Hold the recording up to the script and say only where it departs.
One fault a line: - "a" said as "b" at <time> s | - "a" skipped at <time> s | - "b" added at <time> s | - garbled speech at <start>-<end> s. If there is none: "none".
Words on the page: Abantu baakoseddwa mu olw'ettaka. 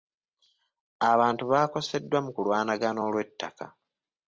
- "kulwanagana" added at 2.4 s